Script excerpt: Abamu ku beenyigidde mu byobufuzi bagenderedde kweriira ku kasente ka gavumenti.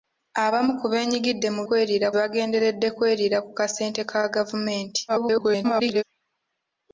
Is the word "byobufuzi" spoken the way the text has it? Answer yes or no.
no